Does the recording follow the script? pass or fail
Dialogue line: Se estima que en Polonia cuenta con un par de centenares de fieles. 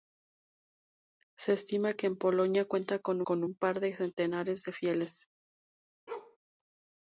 fail